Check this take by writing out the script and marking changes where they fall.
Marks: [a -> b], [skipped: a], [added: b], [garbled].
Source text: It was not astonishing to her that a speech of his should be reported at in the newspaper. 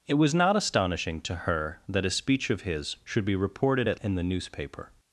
It was not astonishing to her that a speech of his should be reported at in the newspaper.